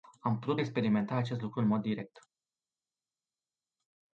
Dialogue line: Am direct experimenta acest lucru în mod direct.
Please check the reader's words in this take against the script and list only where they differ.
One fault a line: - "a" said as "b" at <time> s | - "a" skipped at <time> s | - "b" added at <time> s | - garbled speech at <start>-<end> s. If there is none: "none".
- "direct" said as "putut" at 0.4 s